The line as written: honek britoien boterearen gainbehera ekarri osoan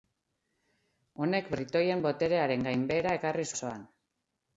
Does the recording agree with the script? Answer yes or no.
yes